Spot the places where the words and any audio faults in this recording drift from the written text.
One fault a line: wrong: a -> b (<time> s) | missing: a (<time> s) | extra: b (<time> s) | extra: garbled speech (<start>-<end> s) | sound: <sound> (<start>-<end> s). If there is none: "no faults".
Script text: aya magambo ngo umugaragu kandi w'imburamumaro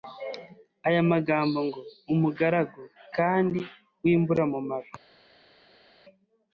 no faults